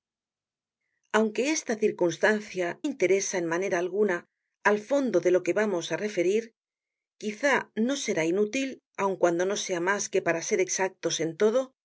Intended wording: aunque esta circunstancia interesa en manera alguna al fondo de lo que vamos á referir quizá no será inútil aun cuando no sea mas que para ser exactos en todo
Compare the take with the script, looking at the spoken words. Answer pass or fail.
pass